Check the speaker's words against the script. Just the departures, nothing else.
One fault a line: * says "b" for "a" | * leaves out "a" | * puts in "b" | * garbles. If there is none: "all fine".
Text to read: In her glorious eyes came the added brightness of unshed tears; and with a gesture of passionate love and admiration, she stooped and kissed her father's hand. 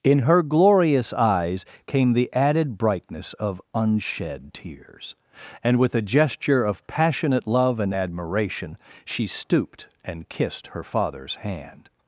all fine